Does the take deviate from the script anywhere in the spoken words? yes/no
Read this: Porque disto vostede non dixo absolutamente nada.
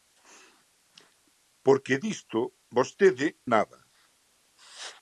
yes